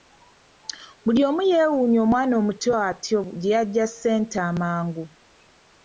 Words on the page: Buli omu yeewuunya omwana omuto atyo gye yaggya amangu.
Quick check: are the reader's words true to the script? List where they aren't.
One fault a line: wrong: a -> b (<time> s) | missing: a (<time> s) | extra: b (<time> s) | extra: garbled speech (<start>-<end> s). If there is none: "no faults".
extra: ssente (3.9 s)